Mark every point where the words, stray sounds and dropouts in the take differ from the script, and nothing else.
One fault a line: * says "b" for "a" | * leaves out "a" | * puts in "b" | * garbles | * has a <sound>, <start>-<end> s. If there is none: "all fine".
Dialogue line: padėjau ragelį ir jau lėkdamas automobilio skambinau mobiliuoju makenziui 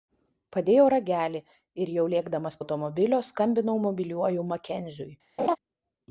* has a laugh, 5.4-5.6 s